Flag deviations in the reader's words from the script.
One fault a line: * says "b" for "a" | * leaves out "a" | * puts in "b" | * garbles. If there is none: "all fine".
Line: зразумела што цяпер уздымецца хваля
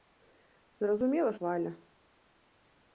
* leaves out "што цяпер уздымецца"